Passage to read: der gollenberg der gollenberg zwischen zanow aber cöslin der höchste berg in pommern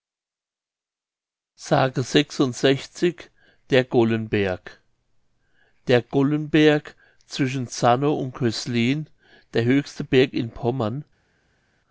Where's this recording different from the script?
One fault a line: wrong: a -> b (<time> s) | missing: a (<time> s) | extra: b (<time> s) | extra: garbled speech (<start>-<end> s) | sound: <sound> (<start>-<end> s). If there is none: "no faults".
wrong: aber -> und (8.2 s)